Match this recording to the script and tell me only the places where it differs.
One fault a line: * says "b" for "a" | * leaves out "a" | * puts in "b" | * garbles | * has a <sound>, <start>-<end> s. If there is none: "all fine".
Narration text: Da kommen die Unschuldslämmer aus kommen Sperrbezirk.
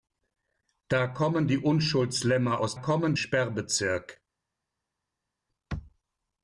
all fine